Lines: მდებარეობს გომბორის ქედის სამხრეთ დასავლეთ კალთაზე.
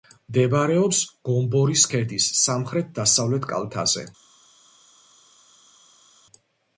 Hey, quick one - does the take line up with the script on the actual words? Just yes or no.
yes